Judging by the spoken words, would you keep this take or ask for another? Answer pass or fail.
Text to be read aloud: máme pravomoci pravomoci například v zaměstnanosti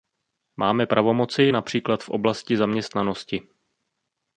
fail